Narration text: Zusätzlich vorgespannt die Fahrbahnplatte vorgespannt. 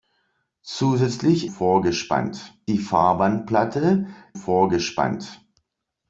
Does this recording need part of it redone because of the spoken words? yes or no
no